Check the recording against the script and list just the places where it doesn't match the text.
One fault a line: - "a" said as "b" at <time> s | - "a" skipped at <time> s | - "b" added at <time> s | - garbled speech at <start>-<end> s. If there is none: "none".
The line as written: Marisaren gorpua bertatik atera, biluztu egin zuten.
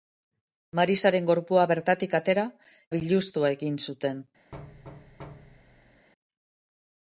none